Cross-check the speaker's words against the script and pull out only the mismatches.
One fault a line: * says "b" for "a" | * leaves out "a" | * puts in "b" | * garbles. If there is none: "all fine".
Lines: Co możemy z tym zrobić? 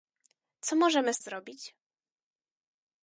* leaves out "tym"